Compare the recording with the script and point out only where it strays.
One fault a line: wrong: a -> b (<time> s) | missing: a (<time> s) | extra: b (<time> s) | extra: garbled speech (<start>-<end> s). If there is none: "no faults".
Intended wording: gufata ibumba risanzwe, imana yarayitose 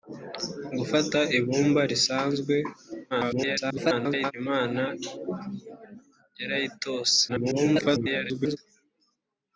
extra: garbled speech (3.1-4.3 s)
extra: garbled speech (7.3-8.6 s)